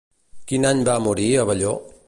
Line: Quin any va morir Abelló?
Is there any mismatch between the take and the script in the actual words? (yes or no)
no